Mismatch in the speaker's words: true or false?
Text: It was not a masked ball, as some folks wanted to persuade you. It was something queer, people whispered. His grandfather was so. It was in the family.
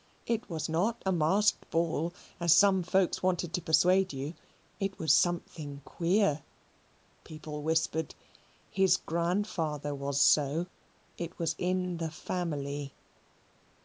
false